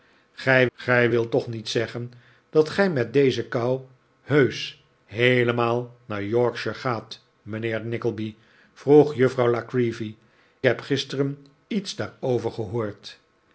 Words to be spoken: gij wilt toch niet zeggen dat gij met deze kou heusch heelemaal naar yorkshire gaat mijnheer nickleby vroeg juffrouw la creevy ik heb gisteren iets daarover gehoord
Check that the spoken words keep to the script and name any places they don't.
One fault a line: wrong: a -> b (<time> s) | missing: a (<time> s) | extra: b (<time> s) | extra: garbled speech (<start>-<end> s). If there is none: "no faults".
extra: gij (0.7 s)
missing: ik (10.1 s)